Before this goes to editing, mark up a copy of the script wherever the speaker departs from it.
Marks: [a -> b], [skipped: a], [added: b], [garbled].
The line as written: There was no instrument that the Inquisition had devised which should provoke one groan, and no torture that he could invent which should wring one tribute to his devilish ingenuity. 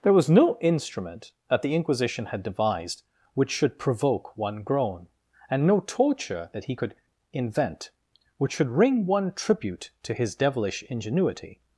There was no instrument that the Inquisition had devised which should provoke one groan, and no torture that he could invent which should wring one tribute to his devilish ingenuity.